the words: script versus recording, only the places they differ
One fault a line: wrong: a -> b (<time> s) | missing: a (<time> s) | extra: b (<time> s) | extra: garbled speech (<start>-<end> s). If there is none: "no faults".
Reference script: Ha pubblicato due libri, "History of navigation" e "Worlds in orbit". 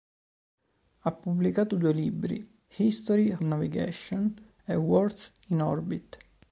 missing: of (3.4 s)